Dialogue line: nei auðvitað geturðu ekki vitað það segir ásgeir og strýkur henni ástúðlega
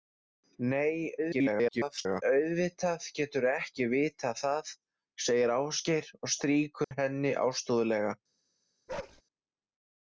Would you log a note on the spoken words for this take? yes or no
yes